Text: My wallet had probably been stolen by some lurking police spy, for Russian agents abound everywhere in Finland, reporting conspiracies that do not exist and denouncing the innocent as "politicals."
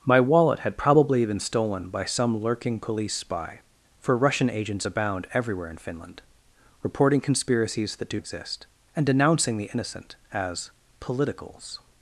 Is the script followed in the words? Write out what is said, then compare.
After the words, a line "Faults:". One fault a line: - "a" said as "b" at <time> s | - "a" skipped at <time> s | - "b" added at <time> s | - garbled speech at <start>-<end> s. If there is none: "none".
My wallet had probably been stolen by some lurking police spy, for Russian agents abound everywhere in Finland, reporting conspiracies that do exist and denouncing the innocent as "politicals."
Faults:
- "not" skipped at 8.2 s